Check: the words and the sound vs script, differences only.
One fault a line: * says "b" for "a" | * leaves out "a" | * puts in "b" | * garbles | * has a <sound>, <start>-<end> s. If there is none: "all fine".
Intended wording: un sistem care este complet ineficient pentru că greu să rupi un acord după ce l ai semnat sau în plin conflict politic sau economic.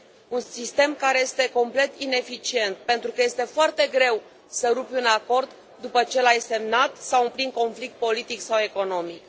* puts in "este foarte"